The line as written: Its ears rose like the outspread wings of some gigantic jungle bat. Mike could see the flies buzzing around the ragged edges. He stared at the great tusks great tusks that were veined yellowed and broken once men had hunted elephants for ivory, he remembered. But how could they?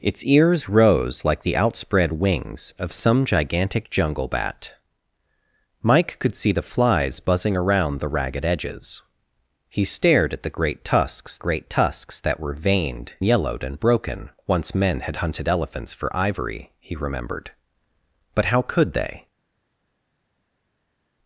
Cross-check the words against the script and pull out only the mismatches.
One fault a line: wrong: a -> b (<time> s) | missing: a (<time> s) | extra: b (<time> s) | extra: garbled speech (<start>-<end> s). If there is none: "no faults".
no faults